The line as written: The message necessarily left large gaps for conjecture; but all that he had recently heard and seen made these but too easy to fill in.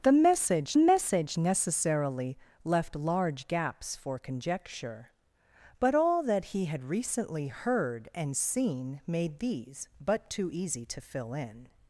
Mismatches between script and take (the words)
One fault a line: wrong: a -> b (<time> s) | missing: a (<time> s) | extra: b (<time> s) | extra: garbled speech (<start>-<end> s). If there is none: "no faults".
extra: message (0.8 s)